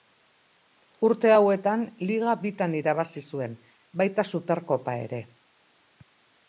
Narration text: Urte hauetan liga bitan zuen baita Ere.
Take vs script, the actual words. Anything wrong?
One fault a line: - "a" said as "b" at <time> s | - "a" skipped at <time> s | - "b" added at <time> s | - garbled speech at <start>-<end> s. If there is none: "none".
- "irabazi" added at 2.8 s
- "Superkopa" added at 4.3 s